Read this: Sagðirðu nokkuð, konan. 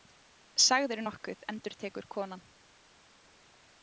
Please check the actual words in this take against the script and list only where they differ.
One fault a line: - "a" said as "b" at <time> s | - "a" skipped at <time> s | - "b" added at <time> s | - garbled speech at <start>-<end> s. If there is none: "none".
- "endurtekur" added at 1.5 s